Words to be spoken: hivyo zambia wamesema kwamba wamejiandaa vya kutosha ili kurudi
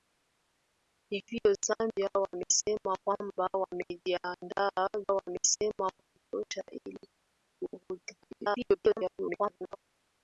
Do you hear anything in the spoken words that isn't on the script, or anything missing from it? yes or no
yes